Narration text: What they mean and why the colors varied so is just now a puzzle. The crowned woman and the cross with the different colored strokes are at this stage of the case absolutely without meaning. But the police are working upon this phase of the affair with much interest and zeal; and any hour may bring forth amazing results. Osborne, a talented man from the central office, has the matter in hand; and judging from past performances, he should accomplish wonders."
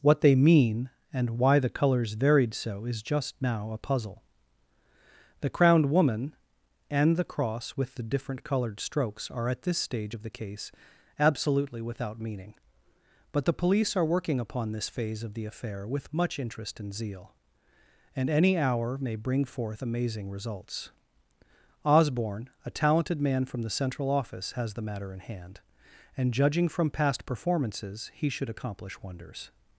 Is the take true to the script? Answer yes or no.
yes